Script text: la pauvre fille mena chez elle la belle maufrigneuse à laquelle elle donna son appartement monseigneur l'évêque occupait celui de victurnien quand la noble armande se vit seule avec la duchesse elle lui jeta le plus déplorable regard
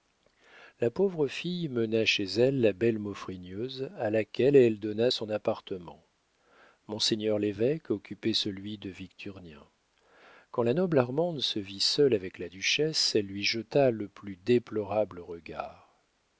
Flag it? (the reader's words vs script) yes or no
no